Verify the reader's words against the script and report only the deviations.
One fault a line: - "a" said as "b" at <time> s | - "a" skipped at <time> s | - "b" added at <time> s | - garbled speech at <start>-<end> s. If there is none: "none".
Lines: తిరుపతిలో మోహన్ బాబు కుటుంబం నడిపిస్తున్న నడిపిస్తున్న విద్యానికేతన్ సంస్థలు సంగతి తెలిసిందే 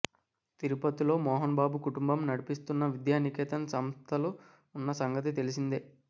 - "నడిపిస్తున్న" skipped at 2.9 s
- "ఉన్న" added at 4.8 s